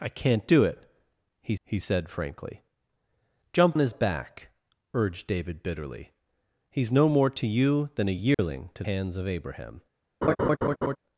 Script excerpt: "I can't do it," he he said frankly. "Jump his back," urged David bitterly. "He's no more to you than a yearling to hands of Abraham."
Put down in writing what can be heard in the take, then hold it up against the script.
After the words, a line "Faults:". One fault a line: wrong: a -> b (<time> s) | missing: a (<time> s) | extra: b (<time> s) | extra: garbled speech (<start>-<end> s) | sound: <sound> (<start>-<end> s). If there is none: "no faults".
"I can't do it," he he said frankly. "Jump his back," urged David bitterly. "He's no more to you than a yearling to hands of Abraham."
Faults:
sound: dropout (8.3-8.4 s)
sound: laugh (10.2-11.0 s)